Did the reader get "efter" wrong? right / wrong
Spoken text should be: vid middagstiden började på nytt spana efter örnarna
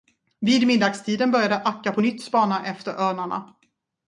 right